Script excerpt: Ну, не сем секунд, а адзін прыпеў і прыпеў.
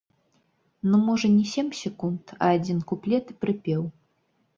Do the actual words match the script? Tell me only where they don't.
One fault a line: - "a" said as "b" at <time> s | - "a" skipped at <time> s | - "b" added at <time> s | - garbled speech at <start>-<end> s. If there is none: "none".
- "можа" added at 1.1 s
- "прыпеў" said as "куплет" at 2.9 s